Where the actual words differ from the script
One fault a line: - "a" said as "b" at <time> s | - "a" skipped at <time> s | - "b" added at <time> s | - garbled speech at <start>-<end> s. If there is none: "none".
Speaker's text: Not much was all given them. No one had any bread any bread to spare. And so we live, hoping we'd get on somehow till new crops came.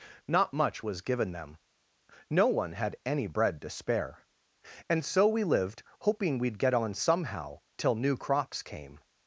- "all" skipped at 1.0 s
- "any bread" skipped at 3.6 s
- "live" said as "lived" at 5.4 s